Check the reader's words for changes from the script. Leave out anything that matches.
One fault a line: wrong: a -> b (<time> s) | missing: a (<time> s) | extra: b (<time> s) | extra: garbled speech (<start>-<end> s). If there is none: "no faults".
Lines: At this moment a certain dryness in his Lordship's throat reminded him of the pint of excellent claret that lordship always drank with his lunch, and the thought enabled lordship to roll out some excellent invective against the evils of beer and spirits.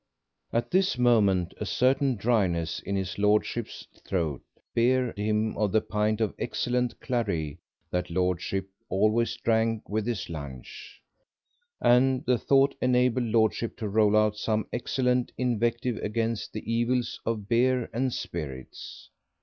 wrong: reminded -> beer (4.7 s)